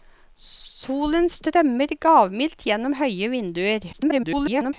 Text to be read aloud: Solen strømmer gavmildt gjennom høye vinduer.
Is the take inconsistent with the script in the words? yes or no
yes